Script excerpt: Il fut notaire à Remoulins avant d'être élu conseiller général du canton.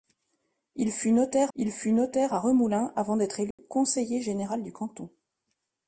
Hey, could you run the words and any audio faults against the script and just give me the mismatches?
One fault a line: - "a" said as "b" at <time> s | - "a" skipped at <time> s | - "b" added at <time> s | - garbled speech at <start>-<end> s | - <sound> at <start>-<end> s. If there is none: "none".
- "il fut notaire" added at 1.5 s
- dropout at 3.5-3.6 s